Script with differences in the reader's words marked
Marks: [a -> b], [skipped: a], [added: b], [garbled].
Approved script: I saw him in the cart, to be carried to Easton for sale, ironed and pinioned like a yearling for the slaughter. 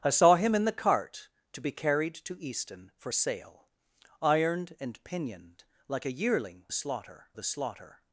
I saw him in the cart, to be carried to Easton for sale, ironed and pinioned like a yearling [for -> slaughter] the slaughter.